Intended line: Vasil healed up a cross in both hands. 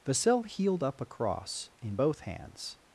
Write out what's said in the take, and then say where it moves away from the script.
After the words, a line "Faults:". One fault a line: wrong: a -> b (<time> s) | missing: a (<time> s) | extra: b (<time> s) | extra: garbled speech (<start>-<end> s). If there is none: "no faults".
Vasil healed up a cross in both hands.
Faults:
no faults